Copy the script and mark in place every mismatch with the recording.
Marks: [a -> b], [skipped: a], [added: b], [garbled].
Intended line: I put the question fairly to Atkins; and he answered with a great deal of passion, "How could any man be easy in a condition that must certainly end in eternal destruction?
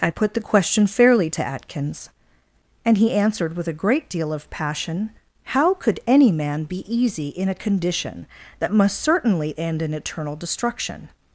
I put the question fairly to Atkins; and he answered with a great deal of passion, "How could any man be easy in a condition that must certainly end in eternal destruction?